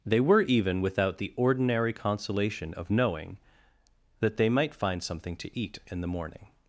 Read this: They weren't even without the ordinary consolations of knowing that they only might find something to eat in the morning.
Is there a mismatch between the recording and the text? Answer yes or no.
yes